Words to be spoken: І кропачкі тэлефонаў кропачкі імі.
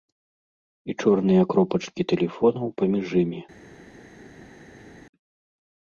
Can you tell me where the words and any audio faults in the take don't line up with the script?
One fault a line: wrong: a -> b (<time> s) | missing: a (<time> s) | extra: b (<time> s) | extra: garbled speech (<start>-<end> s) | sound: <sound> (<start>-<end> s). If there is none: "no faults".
extra: чорныя (1.0 s)
wrong: кропачкі -> паміж (2.8 s)